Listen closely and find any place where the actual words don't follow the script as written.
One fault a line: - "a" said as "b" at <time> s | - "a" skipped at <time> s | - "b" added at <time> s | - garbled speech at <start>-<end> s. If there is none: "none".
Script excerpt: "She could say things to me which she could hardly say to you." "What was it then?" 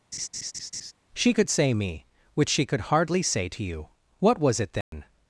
- "things to" skipped at 1.7 s